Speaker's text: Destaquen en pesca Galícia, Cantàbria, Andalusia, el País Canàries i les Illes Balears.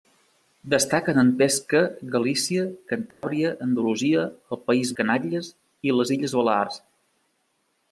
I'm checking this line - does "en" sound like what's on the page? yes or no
yes